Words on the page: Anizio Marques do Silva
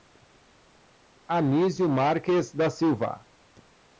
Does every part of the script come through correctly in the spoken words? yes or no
no